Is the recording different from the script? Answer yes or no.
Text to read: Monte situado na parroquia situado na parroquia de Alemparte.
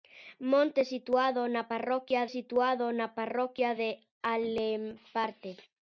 no